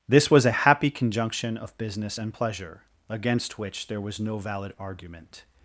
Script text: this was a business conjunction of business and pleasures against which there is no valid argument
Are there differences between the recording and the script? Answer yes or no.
yes